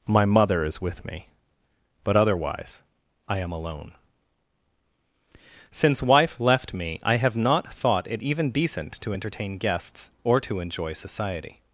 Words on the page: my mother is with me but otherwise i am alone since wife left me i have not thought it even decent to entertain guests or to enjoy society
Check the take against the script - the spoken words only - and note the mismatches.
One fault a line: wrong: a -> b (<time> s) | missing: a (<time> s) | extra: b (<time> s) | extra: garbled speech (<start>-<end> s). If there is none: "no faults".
no faults